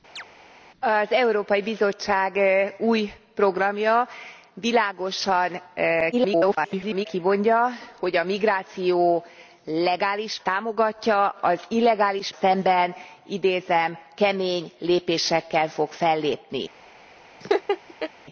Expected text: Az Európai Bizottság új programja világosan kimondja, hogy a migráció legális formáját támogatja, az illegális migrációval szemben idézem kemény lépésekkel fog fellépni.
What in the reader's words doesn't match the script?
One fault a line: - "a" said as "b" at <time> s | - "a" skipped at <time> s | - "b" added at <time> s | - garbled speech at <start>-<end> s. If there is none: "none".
- garbled speech at 6.1-7.1 s
- "formáját" skipped at 10.4 s
- "migrációval" skipped at 12.3 s